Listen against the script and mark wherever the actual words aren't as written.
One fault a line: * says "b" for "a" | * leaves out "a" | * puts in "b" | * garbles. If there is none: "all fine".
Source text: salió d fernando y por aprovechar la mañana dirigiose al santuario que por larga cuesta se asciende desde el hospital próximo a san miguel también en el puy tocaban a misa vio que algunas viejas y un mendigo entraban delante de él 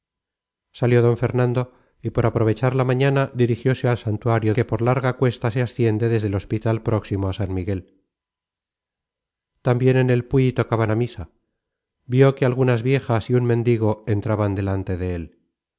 all fine